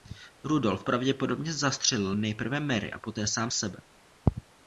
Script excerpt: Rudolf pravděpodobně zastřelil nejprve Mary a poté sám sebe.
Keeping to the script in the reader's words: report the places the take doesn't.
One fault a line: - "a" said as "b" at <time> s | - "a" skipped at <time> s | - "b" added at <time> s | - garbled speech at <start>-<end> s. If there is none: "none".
none